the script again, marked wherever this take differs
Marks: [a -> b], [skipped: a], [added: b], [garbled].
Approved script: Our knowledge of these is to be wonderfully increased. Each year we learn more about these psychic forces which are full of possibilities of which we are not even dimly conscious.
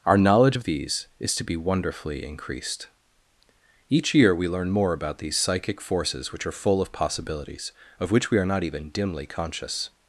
Our knowledge of these is to be wonderfully increased. Each year we learn more about these psychic forces which are full of possibilities of which we are not even dimly conscious.